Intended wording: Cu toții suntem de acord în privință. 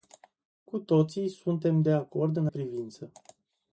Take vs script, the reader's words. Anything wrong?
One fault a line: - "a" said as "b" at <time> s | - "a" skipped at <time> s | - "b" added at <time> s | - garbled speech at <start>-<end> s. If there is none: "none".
none